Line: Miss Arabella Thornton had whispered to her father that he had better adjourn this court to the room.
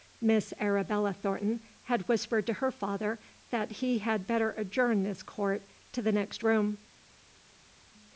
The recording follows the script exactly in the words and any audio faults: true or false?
false